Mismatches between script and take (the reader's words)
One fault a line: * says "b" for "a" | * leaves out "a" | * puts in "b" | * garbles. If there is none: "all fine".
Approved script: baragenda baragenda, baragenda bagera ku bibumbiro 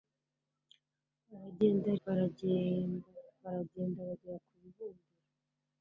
all fine